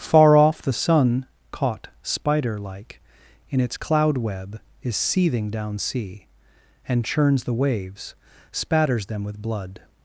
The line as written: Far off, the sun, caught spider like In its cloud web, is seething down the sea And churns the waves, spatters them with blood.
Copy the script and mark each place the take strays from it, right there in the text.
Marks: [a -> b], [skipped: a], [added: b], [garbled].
Far off, the sun, caught spider like In its cloud web, is seething down [skipped: the] sea And churns the waves, spatters them with blood.